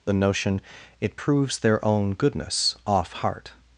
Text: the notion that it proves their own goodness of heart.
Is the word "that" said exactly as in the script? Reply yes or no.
no